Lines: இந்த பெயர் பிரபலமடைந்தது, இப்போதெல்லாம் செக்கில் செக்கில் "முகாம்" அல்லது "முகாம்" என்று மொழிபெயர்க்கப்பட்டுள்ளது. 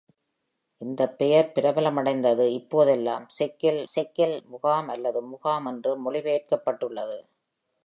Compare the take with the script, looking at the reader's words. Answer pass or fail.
pass